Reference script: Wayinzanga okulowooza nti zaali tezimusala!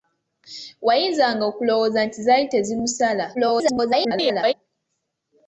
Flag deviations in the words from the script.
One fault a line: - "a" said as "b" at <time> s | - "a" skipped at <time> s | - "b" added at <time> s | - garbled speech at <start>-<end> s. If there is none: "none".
- garbled speech at 3.3-4.5 s